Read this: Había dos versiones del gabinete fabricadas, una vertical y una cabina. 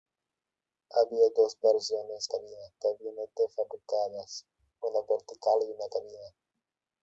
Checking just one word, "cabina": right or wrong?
right